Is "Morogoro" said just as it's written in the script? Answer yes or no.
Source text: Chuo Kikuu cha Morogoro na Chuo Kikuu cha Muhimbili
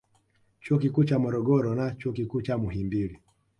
yes